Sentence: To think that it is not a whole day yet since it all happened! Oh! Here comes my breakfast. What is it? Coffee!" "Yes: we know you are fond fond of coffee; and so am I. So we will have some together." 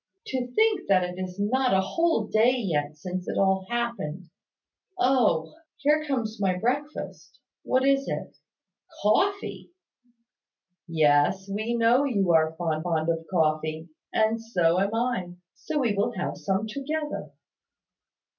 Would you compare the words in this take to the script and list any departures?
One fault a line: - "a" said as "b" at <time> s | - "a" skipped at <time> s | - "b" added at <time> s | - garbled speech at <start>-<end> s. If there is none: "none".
none